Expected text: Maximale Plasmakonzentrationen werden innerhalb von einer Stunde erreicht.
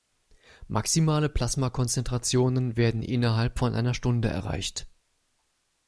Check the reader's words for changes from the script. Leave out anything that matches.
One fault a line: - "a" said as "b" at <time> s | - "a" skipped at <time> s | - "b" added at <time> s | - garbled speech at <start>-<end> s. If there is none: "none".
none